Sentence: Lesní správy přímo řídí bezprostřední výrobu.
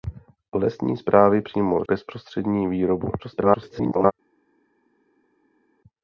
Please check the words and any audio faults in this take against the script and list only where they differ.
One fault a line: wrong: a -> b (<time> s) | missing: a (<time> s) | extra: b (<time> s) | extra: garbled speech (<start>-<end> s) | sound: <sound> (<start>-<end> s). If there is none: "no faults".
missing: řídí (1.8 s)
extra: garbled speech (3.2-4.1 s)